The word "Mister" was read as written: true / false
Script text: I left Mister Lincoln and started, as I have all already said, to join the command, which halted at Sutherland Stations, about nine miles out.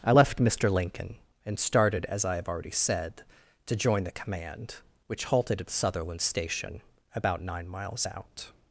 true